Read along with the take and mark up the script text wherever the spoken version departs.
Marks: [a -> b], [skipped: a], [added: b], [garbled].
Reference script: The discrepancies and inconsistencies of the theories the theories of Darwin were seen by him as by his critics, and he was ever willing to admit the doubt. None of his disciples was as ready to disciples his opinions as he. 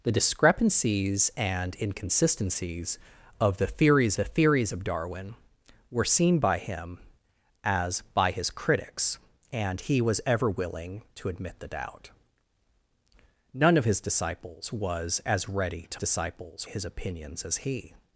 The discrepancies and inconsistencies of the theories the theories of Darwin were seen by him as by his critics, and he was ever willing to admit the doubt. None of his disciples was as ready to disciples his opinions as he.